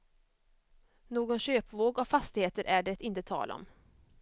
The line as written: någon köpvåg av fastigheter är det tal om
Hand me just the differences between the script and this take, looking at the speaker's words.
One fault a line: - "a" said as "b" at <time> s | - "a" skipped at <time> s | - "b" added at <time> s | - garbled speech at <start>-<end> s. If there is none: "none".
- "inte" added at 3.0 s